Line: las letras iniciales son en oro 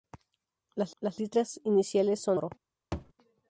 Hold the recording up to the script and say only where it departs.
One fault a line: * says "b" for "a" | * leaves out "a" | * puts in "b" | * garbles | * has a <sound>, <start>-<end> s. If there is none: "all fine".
* puts in "las"
* leaves out "en"
* has a thud, 2.9-3.1 s